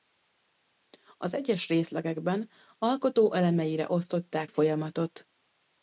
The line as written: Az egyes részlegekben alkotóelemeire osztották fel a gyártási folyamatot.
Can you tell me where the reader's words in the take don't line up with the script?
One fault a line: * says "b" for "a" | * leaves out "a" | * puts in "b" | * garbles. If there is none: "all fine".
* leaves out "fel a gyártási"